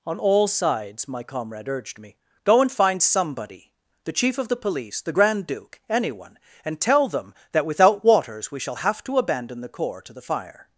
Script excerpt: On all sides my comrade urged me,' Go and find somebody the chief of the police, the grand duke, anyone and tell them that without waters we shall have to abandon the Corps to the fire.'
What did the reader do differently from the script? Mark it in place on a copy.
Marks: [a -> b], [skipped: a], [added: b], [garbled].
On all sides my comrade urged me,' Go and find somebody the chief of the police, the grand duke, anyone and tell them that without waters we shall have to abandon the Corps to the fire.'